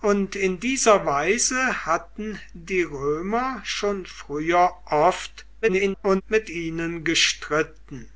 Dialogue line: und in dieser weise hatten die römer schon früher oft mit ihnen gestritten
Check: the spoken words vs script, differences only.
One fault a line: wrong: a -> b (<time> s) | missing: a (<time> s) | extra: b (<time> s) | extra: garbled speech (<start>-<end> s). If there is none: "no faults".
extra: garbled speech (5.6-6.2 s)